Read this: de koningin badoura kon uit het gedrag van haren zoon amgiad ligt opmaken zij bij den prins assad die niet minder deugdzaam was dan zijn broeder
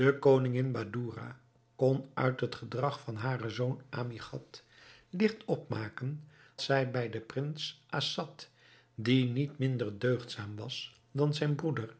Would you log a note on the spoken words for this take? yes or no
no